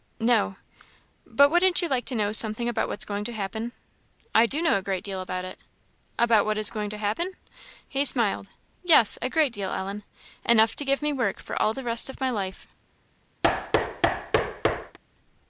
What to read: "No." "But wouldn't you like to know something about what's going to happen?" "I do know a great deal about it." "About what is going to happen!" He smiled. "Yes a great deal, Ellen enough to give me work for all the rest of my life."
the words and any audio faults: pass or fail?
fail